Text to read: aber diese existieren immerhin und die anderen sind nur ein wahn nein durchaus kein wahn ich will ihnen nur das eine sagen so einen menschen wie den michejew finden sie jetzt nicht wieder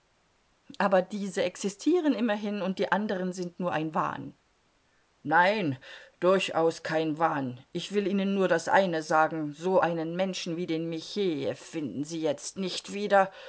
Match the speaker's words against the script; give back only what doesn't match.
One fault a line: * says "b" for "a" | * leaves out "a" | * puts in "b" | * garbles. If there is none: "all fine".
all fine